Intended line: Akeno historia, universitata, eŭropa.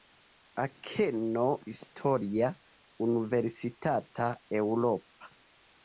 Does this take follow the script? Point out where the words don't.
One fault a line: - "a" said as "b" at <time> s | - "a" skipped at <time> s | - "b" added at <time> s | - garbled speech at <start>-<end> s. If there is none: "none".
none